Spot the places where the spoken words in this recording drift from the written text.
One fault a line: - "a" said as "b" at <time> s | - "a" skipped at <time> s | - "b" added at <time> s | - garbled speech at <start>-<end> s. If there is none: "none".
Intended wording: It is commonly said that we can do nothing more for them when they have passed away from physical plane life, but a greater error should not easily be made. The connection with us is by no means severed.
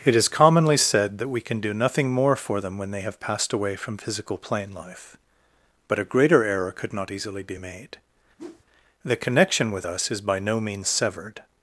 - "should" said as "could" at 6.7 s